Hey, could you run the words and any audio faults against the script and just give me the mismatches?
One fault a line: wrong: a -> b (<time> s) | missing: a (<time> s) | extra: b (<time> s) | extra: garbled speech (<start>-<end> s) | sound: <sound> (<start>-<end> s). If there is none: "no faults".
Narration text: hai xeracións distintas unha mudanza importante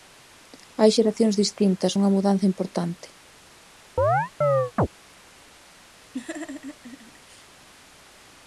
sound: chirp (4.0-4.9 s)
sound: laugh (6.1-7.5 s)